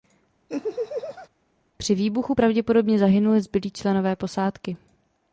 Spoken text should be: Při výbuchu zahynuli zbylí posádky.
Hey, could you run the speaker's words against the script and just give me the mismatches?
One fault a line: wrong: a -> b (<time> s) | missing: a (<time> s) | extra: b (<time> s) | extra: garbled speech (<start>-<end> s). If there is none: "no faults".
extra: pravděpodobně (2.3 s)
extra: členové (3.7 s)